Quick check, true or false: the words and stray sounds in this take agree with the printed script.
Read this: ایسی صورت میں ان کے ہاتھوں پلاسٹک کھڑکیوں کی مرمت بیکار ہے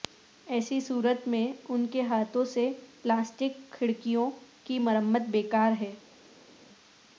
false